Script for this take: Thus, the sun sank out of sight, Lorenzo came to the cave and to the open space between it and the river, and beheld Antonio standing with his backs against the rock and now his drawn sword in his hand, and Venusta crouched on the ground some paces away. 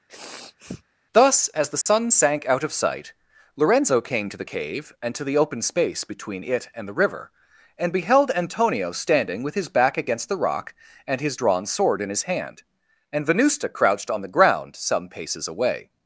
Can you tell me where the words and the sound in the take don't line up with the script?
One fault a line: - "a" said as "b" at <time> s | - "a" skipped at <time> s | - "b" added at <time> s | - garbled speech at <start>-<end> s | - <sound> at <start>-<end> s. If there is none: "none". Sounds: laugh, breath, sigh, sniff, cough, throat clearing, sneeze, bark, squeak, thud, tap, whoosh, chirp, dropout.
- sniff at 0.1-0.8 s
- "as" added at 1.5 s
- dropout at 1.8-1.9 s
- "backs" said as "back" at 9.7 s
- "now" skipped at 11.2 s